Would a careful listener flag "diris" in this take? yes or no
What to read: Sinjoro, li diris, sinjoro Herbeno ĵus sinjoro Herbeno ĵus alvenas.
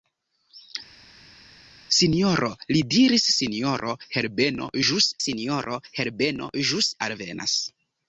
no